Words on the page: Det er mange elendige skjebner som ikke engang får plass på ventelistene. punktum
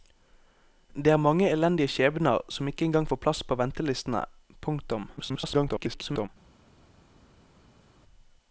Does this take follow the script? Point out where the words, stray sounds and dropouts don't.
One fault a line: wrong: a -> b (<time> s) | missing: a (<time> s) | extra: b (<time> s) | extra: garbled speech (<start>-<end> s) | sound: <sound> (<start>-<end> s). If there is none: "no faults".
extra: garbled speech (5.2-6.3 s)